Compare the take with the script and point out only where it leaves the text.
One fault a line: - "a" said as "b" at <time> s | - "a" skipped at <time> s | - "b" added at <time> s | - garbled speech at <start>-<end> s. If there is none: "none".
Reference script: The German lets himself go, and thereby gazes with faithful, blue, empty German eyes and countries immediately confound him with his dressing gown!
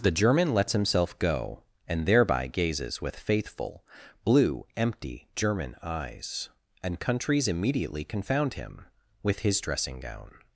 none